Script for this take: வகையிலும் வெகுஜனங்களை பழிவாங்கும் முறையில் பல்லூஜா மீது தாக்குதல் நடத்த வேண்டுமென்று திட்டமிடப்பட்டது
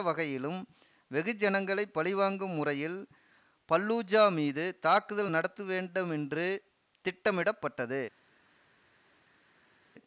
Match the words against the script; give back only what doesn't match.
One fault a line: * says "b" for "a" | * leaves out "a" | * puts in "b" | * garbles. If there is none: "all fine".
all fine